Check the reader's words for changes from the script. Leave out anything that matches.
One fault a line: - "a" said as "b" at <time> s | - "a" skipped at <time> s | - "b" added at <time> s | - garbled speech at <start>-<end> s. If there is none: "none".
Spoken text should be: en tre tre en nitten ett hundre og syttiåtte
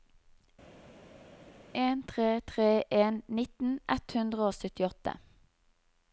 none